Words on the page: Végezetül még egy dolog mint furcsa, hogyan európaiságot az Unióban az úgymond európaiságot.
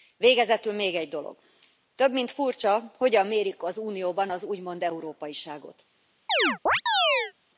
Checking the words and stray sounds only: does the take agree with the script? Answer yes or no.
no